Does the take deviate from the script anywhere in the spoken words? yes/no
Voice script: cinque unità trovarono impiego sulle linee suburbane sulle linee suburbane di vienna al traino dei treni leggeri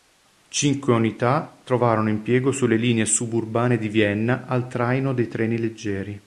yes